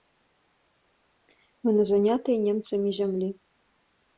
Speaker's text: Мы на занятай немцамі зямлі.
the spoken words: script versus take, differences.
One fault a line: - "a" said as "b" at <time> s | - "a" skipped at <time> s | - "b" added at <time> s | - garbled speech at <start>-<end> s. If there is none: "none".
none